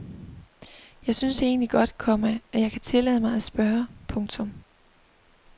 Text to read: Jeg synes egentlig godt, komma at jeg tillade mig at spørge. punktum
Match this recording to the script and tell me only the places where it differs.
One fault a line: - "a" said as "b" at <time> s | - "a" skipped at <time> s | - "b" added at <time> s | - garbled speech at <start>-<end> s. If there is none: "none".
- "kan" added at 2.7 s